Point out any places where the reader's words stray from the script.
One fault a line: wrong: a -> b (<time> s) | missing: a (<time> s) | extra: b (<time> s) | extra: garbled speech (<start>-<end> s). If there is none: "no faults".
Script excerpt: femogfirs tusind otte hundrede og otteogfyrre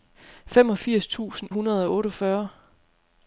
missing: otte (1.5 s)